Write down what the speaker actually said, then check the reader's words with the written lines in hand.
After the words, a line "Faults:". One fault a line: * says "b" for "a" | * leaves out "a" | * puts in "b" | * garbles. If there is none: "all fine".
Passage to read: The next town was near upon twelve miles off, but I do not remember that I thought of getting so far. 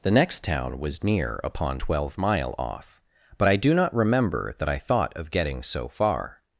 The next town was near upon twelve mile off, but I do not remember that I thought of getting so far.
Faults:
* says "mile" for "miles"